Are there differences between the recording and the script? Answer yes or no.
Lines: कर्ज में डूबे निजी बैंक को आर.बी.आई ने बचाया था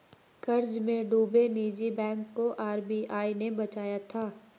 no